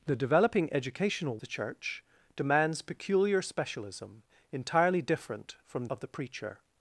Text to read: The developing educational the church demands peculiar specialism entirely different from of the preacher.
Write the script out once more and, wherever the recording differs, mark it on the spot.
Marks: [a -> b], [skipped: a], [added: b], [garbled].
The developing educational the church demands peculiar specialism entirely different from of the preacher.